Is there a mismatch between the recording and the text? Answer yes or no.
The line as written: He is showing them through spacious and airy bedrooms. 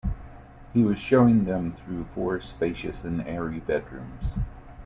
yes